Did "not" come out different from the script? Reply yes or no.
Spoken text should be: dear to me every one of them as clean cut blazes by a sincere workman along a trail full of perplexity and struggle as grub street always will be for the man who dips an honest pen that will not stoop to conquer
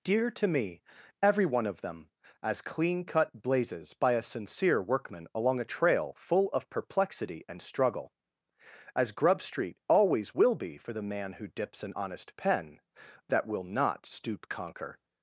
no